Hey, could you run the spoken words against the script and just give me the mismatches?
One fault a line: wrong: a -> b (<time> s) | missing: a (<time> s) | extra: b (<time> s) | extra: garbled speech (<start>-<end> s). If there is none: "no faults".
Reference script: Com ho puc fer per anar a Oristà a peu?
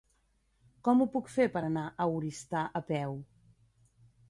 no faults